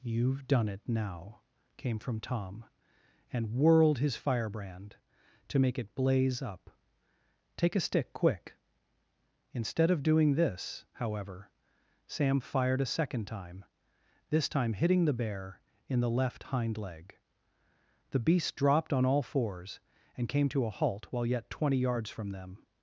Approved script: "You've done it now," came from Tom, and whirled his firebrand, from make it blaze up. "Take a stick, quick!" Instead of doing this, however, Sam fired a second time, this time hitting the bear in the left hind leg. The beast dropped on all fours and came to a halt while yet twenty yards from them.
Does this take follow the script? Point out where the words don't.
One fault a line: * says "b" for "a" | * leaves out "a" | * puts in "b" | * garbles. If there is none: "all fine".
* says "to" for "from"